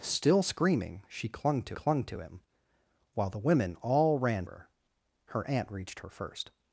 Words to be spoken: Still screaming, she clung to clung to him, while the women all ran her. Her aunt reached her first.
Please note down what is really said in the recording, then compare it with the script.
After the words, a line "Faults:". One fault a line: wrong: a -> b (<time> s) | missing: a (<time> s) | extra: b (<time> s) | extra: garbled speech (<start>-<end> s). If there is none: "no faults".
Still screaming, she clung to clung to him, while the women all ran her. Her aunt reached her first.
Faults:
no faults